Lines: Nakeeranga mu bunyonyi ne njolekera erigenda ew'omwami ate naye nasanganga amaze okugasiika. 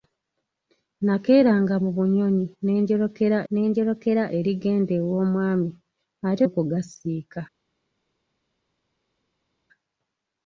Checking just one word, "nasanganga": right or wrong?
wrong